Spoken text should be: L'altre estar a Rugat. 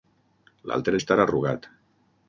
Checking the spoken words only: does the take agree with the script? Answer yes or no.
yes